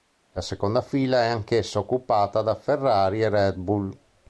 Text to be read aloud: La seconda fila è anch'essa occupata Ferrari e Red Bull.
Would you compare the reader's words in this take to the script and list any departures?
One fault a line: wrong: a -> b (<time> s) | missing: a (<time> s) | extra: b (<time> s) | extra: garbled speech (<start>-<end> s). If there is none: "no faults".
extra: da (2.4 s)